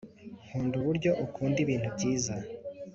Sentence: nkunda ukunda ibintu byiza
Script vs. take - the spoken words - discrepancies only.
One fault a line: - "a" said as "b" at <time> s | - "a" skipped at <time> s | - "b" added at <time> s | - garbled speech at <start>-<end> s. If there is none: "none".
- "uburyo" added at 0.8 s